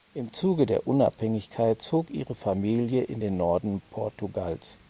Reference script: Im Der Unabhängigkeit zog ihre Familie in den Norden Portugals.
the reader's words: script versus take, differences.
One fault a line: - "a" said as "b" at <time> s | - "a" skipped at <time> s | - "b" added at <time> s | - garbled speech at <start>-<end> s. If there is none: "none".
- "Zuge" added at 0.3 s